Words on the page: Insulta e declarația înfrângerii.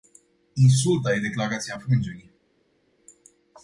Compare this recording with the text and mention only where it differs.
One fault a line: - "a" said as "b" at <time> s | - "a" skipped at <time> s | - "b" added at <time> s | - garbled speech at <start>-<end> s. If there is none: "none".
none